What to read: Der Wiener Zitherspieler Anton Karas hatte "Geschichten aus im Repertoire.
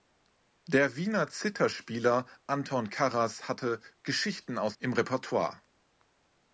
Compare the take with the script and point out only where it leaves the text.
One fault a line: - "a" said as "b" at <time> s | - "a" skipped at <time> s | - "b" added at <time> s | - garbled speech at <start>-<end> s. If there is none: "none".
none